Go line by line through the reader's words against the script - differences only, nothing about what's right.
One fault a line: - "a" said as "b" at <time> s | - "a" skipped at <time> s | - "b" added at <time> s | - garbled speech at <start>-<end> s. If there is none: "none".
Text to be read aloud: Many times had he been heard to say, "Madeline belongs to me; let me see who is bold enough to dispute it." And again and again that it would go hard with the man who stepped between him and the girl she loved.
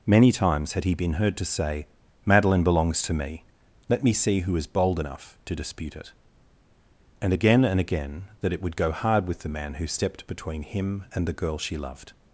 none